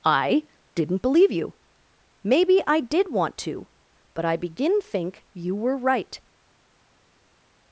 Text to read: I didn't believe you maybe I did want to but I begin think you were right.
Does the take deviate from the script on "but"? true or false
false